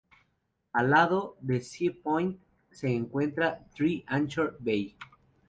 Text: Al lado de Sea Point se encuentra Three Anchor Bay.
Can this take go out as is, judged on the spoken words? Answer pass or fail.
pass